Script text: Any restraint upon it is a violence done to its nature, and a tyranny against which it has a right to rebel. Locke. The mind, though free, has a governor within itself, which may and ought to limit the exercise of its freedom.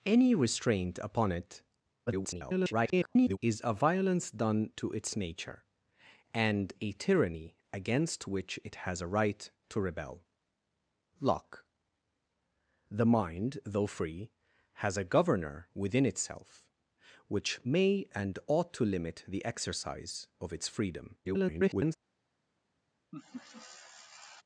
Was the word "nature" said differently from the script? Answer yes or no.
no